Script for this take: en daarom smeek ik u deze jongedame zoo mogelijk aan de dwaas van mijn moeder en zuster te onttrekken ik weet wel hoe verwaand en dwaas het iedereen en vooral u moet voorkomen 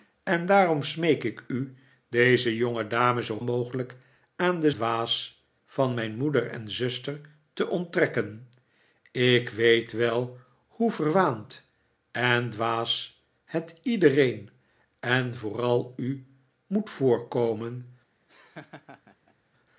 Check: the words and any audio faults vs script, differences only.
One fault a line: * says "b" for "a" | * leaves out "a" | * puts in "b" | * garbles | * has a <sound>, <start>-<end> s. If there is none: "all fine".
* has a laugh, 18.3-19.4 s